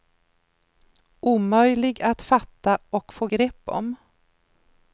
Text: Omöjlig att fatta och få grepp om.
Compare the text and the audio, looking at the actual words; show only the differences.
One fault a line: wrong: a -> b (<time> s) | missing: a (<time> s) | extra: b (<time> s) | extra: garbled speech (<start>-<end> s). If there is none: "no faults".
no faults